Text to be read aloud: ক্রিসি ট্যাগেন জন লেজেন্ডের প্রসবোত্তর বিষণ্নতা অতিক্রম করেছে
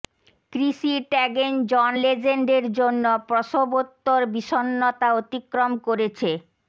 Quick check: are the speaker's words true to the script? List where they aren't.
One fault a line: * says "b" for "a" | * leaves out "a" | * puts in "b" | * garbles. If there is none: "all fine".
* puts in "জন্য"